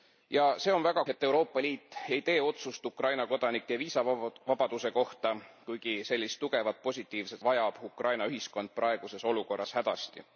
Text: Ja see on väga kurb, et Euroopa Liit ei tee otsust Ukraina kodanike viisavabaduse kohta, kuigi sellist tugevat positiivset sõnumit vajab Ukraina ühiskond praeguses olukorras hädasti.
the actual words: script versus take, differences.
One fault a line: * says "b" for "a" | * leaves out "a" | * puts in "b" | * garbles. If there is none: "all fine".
* leaves out "kurb"
* leaves out "sõnumit"